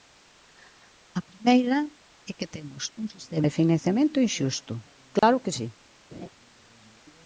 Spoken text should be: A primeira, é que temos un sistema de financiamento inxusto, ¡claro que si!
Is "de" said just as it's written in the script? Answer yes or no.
yes